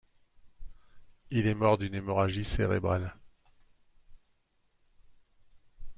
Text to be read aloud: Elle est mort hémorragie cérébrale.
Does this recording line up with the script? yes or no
no